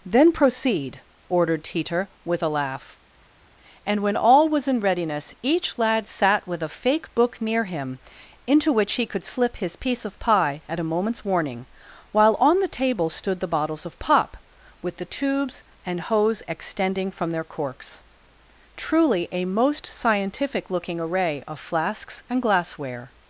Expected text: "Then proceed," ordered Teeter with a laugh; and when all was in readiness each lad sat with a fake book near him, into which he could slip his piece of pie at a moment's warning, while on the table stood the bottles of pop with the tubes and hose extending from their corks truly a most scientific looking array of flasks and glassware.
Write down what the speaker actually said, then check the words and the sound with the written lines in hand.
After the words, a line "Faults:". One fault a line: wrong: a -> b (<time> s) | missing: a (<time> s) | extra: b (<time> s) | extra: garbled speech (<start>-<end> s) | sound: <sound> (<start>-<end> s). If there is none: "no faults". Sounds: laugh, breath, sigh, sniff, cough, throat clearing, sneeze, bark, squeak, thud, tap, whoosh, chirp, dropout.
"Then proceed," ordered Teeter with a laugh; and when all was in readiness each lad sat with a fake book near him, into which he could slip his piece of pie at a moment's warning, while on the table stood the bottles of pop with the tubes and hose extending from their corks truly a most scientific looking array of flasks and glassware.
Faults:
no faults